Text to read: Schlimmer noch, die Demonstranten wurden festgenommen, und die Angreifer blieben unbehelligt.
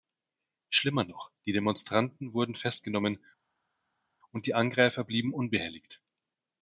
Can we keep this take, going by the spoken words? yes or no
yes